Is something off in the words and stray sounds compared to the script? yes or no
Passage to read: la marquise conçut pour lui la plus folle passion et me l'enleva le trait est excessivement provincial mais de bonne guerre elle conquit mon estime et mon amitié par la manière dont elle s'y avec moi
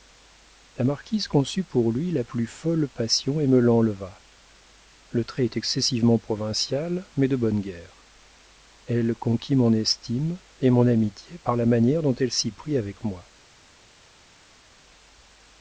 yes